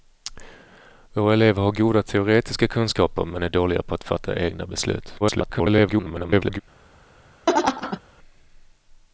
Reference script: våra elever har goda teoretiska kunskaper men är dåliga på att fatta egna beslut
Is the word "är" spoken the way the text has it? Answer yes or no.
yes